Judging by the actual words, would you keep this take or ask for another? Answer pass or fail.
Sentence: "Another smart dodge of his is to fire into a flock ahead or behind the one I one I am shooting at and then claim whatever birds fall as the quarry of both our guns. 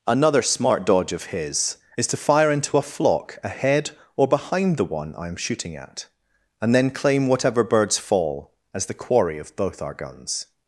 fail